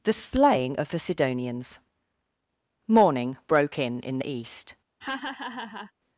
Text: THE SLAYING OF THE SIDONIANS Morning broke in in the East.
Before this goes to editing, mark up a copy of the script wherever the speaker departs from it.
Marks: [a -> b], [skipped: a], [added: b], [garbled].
THE SLAYING OF THE SIDONIANS Morning broke in in the East.